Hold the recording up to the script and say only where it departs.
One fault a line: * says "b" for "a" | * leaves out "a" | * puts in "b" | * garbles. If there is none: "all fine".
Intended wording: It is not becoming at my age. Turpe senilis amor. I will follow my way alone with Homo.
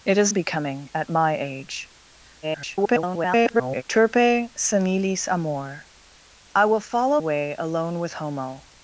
* leaves out "not"
* garbles
* leaves out "my"